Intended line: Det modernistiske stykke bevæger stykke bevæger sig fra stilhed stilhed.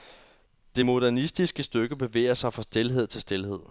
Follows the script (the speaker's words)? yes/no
no